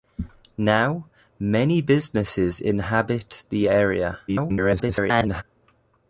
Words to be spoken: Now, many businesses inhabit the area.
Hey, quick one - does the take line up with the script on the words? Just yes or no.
no